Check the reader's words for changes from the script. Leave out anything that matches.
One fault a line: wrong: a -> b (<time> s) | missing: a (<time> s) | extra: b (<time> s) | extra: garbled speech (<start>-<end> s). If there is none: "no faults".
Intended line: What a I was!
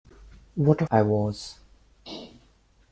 no faults